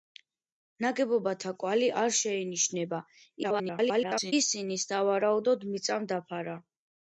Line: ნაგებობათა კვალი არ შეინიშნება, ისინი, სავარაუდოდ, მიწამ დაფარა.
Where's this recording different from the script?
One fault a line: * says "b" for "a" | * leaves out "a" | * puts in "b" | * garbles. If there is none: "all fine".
* garbles